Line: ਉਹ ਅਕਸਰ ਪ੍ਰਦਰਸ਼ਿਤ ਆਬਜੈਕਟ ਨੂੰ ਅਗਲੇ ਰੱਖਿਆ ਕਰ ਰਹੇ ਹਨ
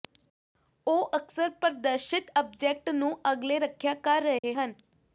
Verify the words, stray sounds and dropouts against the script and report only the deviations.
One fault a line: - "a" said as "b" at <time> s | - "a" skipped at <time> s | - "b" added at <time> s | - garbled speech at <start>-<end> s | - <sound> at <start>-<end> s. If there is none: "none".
- dropout at 4.4-4.4 s